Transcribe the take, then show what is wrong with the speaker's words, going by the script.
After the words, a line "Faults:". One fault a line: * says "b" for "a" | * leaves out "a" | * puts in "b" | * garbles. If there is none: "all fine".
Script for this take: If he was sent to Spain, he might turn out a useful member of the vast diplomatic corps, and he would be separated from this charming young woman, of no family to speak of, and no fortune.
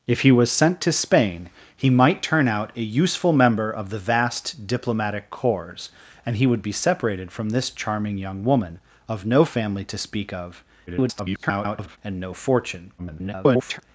If he was sent to Spain, he might turn out a useful member of the vast diplomatic corps, and he would be separated from this charming young woman, of no family to speak of, [garbled] and no fortune. [garbled]
Faults:
* garbles
* garbles